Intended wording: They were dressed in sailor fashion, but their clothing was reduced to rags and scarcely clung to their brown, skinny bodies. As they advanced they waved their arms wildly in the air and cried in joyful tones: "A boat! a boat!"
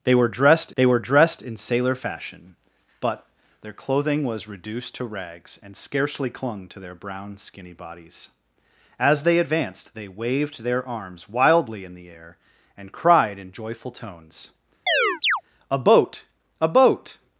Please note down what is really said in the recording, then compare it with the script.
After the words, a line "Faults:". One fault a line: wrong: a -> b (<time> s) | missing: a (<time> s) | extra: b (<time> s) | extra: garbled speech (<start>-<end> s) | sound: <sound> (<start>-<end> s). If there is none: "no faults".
They were dressed they were dressed in sailor fashion, but their clothing was reduced to rags and scarcely clung to their brown, skinny bodies. As they advanced they waved their arms wildly in the air and cried in joyful tones: "A boat! a boat!"
Faults:
extra: they were dressed (0.7 s)
sound: chirp (14.9-15.4 s)